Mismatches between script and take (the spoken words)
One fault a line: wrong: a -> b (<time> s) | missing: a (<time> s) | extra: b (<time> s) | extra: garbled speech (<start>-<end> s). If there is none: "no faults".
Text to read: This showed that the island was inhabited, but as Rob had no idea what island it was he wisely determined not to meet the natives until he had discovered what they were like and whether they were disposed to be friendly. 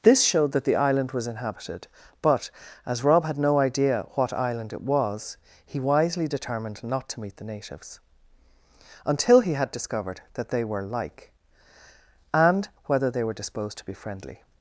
wrong: what -> that (10.3 s)